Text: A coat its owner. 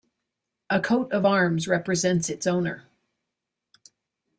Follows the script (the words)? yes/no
no